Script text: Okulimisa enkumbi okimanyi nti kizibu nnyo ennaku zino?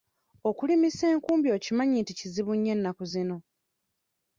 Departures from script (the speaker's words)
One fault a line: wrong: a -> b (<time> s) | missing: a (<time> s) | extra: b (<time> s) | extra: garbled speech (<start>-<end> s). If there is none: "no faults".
no faults